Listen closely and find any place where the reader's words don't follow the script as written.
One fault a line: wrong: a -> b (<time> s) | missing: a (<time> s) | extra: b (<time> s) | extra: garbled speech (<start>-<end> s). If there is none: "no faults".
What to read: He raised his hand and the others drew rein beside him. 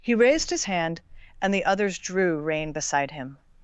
no faults